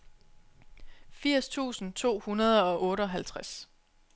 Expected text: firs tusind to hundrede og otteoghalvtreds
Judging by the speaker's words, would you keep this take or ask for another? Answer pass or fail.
pass